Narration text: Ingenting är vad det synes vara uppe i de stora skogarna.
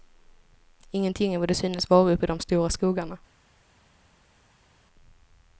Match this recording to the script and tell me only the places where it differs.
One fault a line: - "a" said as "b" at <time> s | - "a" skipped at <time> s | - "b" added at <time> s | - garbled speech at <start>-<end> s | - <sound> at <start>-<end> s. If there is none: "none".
none